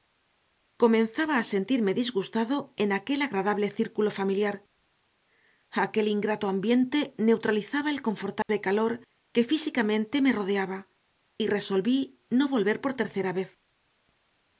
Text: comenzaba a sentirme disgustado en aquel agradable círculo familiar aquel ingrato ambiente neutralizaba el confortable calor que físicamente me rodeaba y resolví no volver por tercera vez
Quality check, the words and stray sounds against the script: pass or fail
fail